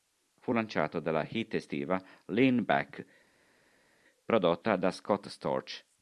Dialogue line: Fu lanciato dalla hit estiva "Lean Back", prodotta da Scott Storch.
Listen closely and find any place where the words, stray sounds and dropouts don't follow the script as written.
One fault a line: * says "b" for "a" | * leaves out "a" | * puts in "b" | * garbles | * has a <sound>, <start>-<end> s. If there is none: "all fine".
all fine